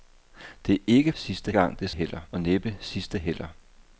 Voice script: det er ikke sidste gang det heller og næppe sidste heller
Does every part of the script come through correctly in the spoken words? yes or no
yes